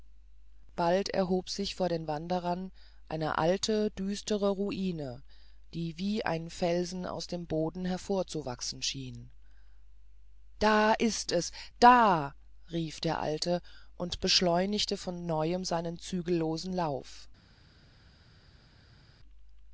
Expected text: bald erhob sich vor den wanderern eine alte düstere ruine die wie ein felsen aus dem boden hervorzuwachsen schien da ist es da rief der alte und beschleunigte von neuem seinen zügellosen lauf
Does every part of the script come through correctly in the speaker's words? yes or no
yes